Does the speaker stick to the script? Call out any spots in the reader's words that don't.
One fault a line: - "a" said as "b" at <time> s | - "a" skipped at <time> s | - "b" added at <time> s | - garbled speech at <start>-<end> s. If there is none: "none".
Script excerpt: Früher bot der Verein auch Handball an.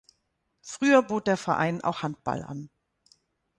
none